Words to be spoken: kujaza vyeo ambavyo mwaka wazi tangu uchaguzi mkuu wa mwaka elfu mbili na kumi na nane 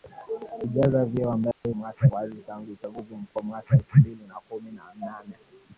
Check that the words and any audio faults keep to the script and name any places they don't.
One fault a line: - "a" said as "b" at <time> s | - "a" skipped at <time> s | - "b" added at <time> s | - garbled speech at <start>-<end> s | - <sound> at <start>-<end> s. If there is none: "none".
- dropout at 1.5-1.6 s